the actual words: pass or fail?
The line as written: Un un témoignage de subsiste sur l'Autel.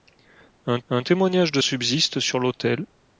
pass